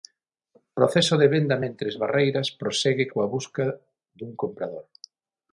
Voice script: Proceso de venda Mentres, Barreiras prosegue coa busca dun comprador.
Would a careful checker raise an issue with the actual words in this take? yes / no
no